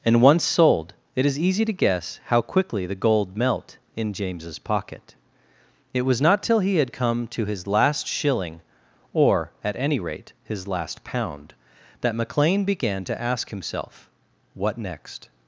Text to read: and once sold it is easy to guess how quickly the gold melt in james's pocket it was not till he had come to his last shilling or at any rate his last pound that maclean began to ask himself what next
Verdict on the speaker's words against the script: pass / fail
pass